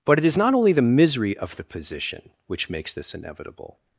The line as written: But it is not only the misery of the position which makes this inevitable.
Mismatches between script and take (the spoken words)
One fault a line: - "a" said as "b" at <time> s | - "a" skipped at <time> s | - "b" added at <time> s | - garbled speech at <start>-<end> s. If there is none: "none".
none